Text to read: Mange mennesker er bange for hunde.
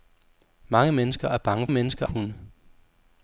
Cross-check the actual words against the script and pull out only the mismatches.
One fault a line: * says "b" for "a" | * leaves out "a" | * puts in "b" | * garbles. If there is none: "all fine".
* says "mennesker" for "for"